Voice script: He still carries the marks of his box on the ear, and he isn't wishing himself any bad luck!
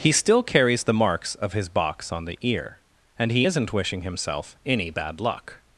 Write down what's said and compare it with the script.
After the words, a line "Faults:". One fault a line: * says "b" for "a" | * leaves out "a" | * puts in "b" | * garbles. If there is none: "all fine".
He still carries the marks of his box on the ear, and he isn't wishing himself any bad luck!
Faults:
all fine